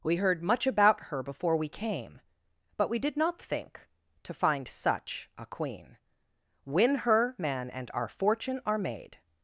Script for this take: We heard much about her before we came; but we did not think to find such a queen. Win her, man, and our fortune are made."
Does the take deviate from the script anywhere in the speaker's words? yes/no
no